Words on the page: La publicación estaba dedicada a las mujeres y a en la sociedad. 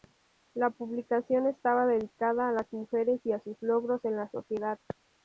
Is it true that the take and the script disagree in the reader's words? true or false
true